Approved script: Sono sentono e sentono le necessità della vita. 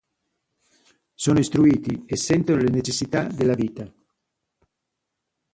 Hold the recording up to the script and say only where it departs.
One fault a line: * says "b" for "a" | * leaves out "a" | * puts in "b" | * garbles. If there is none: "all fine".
* says "istruiti" for "sentono"